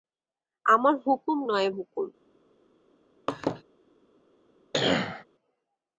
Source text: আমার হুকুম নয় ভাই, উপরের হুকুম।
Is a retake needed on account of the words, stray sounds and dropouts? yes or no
yes